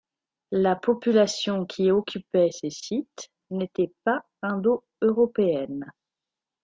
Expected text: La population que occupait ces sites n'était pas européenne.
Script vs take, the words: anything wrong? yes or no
yes